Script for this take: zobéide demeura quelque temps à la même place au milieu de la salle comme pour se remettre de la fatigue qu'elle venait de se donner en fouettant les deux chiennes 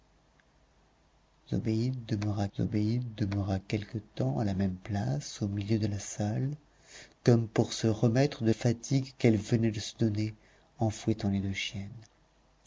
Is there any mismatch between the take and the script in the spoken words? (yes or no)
yes